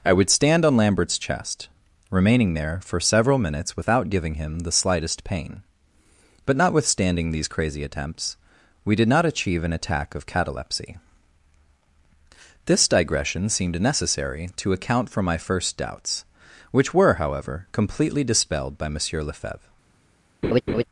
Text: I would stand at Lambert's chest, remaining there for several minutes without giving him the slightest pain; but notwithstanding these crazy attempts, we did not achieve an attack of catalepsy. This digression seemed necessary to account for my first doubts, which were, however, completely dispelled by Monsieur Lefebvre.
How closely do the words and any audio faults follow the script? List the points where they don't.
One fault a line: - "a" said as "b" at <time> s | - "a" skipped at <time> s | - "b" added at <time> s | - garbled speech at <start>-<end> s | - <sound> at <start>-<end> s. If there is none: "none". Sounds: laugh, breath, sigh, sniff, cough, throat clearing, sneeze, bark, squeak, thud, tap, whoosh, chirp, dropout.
- "at" said as "on" at 0.7 s
- laugh at 20.4-20.8 s